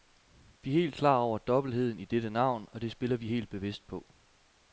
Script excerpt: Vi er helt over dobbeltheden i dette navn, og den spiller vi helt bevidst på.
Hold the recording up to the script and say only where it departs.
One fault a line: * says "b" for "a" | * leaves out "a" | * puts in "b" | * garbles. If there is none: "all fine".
* puts in "klar"
* says "det" for "den"